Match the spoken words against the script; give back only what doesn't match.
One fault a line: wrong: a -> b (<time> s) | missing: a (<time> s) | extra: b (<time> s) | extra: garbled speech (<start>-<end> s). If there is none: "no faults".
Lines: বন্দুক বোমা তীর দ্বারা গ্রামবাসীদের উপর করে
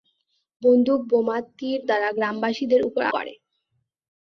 no faults